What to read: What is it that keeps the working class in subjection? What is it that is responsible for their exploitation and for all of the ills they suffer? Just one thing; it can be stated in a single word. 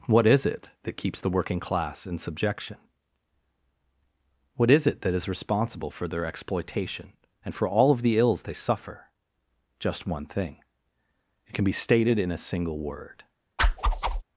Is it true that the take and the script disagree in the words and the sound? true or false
true